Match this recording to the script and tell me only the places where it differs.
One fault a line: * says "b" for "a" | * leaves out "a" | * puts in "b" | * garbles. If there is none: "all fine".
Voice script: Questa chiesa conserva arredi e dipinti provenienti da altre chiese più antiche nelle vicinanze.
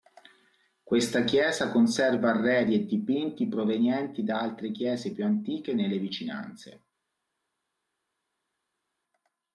all fine